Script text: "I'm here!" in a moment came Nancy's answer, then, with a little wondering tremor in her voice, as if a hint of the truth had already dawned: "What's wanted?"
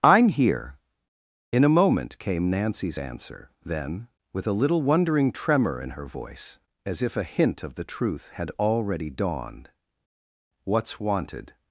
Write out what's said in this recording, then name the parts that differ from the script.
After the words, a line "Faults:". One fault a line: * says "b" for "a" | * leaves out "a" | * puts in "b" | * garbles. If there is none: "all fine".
"I'm here!" in a moment came Nancy's answer, then, with a little wondering tremor in her voice, as if a hint of the truth had already dawned: "What's wanted?"
Faults:
all fine